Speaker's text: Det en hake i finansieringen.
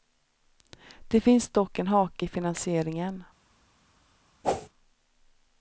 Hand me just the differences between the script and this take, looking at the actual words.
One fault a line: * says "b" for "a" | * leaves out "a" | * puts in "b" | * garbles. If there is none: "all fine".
* puts in "finns dock"